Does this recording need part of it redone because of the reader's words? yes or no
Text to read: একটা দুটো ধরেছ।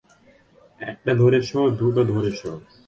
yes